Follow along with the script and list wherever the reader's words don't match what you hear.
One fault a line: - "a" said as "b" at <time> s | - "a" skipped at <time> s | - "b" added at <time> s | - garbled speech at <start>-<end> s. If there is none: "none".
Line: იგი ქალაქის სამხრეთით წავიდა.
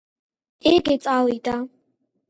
- "ქალაქის სამხრეთით" skipped at 0.9 s